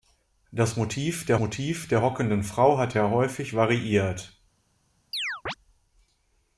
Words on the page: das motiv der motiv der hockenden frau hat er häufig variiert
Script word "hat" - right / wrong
right